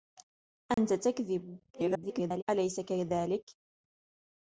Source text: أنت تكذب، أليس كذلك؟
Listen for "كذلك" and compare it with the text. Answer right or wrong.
right